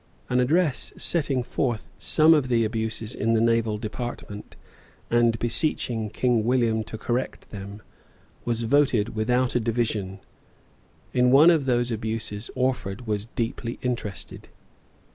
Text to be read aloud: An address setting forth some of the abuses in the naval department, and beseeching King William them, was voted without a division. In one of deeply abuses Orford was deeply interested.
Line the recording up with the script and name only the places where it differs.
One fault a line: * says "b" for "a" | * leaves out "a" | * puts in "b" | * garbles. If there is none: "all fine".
* puts in "to correct"
* says "those" for "deeply"